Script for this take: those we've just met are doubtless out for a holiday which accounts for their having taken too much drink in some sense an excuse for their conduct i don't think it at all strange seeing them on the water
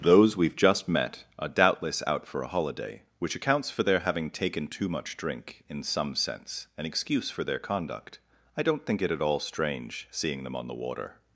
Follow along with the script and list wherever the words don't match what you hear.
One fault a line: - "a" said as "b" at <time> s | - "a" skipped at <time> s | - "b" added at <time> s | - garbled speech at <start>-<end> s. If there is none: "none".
none